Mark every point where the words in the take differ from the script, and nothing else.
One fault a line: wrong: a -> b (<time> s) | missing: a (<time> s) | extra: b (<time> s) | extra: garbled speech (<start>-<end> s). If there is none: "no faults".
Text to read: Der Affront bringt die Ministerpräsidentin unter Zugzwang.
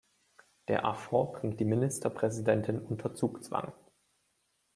no faults